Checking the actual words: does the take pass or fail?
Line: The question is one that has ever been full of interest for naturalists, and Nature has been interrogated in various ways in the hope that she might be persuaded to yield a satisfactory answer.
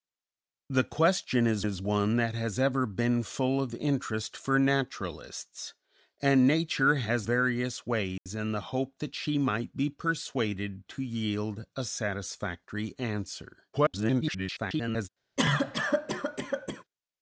fail